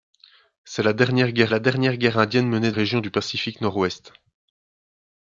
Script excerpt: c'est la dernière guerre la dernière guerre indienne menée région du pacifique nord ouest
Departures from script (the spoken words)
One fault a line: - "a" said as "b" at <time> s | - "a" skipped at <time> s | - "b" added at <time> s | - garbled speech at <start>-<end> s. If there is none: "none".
none